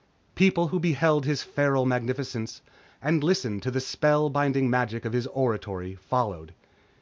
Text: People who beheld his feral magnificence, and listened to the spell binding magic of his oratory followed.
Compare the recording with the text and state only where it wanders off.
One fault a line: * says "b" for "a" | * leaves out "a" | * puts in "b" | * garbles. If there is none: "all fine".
all fine